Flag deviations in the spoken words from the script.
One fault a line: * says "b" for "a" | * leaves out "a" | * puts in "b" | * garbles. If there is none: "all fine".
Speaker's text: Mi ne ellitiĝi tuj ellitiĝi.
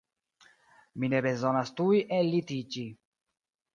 * says "bezonas" for "ellitiĝi"